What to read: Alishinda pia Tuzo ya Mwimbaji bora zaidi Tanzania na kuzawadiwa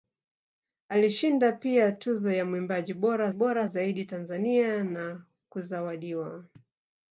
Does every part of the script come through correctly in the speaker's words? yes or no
no